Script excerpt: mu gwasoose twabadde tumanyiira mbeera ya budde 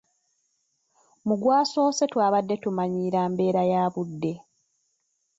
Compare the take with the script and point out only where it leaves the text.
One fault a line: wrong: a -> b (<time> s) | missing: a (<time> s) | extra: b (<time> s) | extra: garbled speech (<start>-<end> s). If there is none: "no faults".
no faults